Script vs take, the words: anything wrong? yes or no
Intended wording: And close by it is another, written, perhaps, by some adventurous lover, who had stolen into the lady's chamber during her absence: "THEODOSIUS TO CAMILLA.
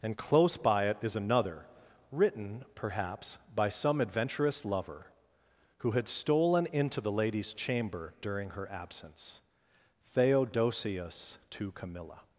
no